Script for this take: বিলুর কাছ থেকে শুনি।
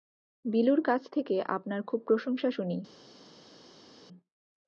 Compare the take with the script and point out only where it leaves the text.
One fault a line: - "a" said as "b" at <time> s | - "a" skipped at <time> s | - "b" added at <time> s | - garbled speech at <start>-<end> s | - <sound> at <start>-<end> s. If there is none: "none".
- "আপনার খুব প্রশংসা" added at 1.5 s